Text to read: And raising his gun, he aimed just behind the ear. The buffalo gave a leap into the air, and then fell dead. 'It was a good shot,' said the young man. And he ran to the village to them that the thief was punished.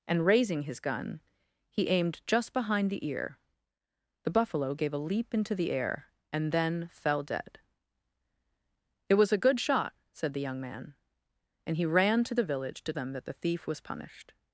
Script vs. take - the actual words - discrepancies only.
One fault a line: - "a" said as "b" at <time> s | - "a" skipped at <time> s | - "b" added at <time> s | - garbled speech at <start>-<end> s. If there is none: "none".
none